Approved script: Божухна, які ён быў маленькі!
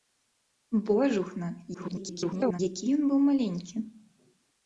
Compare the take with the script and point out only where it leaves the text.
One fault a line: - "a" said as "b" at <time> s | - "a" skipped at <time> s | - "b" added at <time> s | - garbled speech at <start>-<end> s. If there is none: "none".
- garbled speech at 1.7-2.6 s